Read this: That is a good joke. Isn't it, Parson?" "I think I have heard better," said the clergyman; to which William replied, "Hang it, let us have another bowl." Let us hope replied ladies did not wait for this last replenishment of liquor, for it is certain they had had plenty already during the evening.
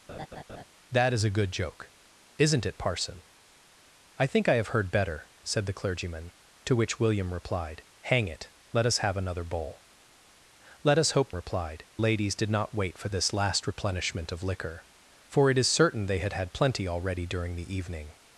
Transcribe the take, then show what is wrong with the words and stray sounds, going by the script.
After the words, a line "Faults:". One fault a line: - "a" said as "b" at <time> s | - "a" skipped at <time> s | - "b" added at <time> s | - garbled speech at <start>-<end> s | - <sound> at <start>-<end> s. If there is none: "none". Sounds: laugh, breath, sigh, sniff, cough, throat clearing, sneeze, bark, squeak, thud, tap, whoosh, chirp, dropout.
That is a good joke. Isn't it, Parson?" "I think I have heard better," said the clergyman; to which William replied, "Hang it, let us have another bowl." Let us hope replied ladies did not wait for this last replenishment of liquor, for it is certain they had had plenty already during the evening.
Faults:
- laugh at 0.1-0.6 s